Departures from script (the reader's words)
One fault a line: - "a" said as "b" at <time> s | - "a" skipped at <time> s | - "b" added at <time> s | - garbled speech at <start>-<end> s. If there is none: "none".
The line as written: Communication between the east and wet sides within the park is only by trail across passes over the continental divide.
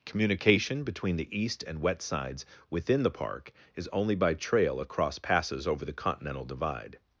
none